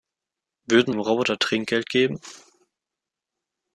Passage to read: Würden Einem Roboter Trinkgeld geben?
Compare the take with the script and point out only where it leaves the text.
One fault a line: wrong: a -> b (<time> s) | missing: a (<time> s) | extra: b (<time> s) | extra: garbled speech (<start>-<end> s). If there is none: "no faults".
no faults